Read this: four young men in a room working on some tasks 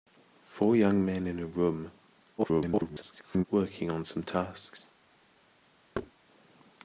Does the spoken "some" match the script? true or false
true